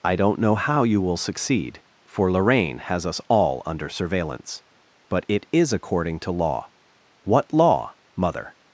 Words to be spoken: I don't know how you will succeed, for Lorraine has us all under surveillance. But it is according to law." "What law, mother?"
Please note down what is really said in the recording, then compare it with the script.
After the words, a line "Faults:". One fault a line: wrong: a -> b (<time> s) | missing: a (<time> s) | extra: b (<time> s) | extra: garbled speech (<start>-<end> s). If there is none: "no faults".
I don't know how you will succeed, for Lorraine has us all under surveillance. But it is according to law." "What law, mother?"
Faults:
no faults